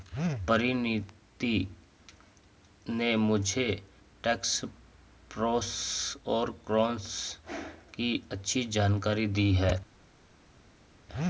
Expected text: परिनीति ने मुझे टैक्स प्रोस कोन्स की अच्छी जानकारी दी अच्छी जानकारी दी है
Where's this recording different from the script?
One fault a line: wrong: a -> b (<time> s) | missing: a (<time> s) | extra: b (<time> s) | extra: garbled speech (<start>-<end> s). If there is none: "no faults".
extra: और (6.3 s)
missing: अच्छी जानकारी दी (9.5 s)